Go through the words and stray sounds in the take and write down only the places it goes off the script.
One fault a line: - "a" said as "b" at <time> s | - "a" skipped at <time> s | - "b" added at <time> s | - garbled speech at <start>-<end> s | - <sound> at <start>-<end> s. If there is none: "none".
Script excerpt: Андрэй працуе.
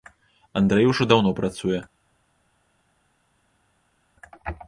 - "ужо даўно" added at 0.9 s